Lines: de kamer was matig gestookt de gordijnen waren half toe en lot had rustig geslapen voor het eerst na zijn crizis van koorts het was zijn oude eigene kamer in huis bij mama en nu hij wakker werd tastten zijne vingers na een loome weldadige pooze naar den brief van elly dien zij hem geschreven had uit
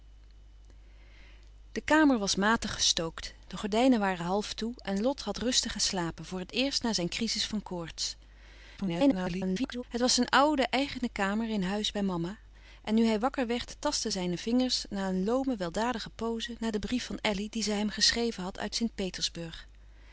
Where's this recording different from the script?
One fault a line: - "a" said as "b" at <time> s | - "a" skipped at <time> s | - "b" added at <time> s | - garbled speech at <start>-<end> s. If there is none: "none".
- garbled speech at 8.8-9.8 s